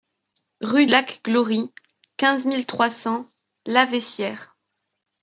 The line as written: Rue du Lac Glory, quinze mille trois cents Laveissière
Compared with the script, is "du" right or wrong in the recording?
wrong